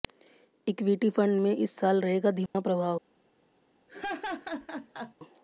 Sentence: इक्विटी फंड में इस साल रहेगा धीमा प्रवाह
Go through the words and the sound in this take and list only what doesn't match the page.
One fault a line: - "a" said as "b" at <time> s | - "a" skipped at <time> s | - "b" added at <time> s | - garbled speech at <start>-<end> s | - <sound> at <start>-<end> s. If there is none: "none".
- dropout at 2.5-2.5 s
- laugh at 3.9-5.1 s